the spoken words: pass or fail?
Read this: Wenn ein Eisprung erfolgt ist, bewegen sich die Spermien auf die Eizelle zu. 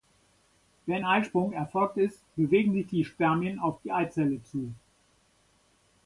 fail